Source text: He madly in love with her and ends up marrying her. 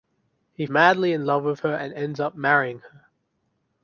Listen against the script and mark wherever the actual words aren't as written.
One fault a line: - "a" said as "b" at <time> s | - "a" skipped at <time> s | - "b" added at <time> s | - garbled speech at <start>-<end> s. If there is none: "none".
none